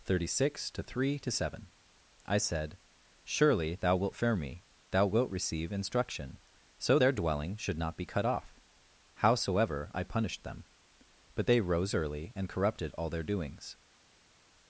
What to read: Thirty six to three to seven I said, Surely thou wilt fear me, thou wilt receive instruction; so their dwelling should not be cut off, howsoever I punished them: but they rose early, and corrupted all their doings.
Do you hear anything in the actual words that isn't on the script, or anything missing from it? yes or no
no